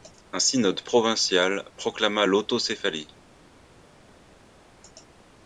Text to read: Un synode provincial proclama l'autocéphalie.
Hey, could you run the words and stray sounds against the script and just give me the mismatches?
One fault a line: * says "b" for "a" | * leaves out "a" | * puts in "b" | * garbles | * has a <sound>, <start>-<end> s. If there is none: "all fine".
all fine